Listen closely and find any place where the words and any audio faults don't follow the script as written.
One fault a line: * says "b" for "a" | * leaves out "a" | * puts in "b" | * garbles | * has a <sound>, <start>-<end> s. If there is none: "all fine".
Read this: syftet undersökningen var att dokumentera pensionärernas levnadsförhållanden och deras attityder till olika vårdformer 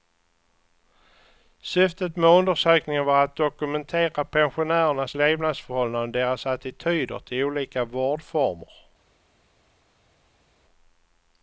* puts in "med"